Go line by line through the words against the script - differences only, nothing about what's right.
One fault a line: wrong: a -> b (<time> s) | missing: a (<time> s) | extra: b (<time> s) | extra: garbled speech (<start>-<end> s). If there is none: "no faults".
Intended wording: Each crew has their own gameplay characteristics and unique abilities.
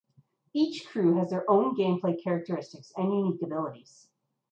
no faults